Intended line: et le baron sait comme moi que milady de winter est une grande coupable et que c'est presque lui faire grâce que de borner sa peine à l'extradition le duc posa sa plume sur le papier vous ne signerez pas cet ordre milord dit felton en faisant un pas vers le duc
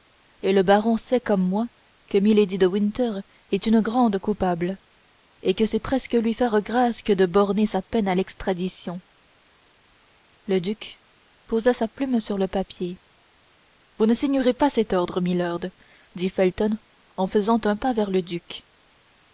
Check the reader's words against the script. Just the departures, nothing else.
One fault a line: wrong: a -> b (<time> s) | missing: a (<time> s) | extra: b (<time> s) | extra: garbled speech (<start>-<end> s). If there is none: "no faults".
no faults